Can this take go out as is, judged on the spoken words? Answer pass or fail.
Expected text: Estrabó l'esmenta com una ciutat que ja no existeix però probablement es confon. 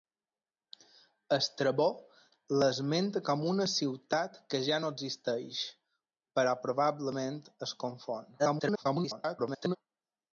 fail